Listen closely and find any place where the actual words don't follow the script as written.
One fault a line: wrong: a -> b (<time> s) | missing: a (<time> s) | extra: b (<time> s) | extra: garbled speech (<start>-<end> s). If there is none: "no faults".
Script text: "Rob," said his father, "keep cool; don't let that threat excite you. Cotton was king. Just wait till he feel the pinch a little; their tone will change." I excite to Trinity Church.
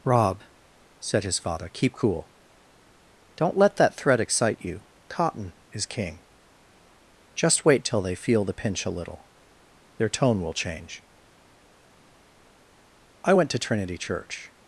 wrong: was -> is (5.7 s)
wrong: he -> they (8.0 s)
wrong: excite -> went (13.3 s)